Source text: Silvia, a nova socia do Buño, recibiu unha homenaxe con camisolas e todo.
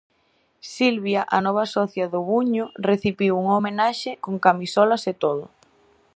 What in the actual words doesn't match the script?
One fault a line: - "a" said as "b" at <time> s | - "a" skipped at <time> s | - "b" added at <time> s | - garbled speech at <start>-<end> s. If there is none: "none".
none